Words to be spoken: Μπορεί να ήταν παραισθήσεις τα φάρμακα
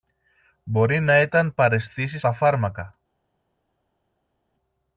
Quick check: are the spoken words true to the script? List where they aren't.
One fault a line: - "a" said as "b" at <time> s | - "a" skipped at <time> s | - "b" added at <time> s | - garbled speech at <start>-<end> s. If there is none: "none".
none